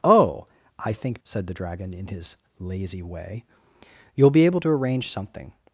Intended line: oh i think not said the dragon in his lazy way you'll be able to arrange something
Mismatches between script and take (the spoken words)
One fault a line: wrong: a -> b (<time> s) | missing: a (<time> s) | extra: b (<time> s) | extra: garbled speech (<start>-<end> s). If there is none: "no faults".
missing: not (1.2 s)